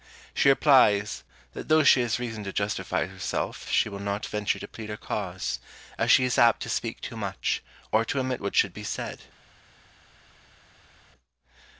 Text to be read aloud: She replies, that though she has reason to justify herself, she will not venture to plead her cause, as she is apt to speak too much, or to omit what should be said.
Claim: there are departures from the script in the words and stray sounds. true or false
false